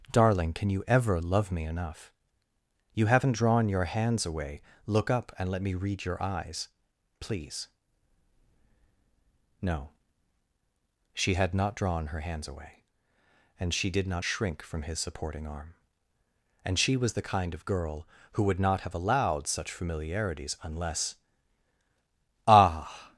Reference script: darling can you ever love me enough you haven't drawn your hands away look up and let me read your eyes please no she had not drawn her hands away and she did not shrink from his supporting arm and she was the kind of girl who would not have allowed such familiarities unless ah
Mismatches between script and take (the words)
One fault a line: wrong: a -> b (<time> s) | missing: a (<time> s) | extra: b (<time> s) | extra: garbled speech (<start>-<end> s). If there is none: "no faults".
no faults